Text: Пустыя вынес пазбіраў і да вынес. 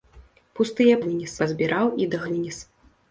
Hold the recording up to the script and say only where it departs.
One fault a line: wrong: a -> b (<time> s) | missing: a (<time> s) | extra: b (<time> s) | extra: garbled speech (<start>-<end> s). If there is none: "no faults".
no faults